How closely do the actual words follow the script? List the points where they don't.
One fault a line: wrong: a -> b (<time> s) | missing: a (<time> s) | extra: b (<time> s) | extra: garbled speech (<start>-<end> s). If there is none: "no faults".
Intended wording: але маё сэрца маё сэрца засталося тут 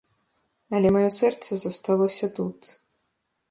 missing: маё сэрца (1.5 s)